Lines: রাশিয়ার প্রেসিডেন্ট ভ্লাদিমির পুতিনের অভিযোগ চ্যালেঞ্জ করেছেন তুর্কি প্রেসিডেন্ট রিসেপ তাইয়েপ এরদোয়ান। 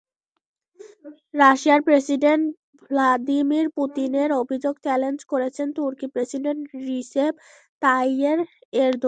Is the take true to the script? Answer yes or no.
yes